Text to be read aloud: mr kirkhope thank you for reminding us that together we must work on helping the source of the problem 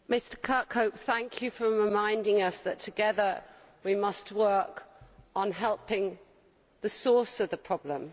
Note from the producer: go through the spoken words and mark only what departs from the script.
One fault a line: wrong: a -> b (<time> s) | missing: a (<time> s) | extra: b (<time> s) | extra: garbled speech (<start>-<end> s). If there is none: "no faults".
no faults